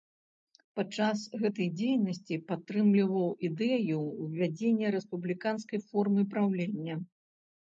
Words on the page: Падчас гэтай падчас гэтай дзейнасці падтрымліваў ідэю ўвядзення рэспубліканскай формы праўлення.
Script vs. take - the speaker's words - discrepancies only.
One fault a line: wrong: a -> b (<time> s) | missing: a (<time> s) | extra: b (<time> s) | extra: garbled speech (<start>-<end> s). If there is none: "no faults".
missing: падчас гэтай (1.7 s)